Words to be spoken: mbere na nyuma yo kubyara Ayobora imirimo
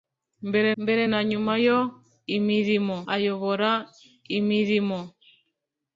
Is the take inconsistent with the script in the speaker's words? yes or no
yes